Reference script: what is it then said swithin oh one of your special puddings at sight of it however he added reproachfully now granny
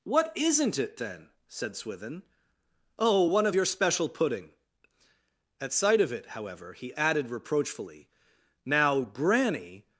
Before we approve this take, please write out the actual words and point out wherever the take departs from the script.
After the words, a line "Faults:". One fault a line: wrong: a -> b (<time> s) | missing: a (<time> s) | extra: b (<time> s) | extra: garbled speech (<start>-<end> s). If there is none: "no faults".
what isn't it then said swithin oh one of your special pudding at sight of it however he added reproachfully now granny
Faults:
wrong: is -> isn't (0.3 s)
wrong: puddings -> pudding (4.1 s)